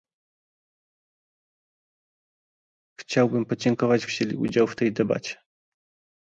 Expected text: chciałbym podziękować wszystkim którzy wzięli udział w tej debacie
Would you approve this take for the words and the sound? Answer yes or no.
no